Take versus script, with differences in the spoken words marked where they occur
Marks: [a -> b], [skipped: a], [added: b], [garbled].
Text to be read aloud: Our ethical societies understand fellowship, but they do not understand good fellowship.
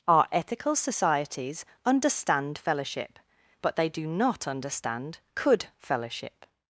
Our ethical societies understand fellowship, but they do not understand [good -> could] fellowship.